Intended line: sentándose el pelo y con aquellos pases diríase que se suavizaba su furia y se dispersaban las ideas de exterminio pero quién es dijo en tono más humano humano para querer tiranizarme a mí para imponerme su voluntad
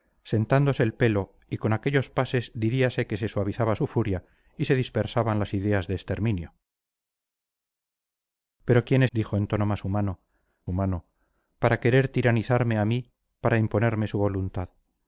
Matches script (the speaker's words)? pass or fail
pass